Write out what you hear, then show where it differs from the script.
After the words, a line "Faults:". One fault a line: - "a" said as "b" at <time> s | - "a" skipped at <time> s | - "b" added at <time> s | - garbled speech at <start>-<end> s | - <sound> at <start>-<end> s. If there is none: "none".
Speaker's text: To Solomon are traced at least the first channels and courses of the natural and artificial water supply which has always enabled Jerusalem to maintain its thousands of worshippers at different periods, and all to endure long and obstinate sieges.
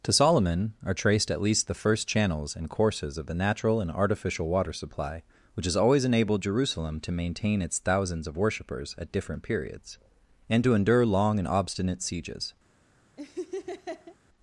To Solomon are traced at least the first channels and courses of the natural and artificial water supply which has always enabled Jerusalem to maintain its thousands of worshippers at different periods, and to endure long and obstinate sieges.
Faults:
- "all" skipped at 10.6 s
- laugh at 13.2-14.2 s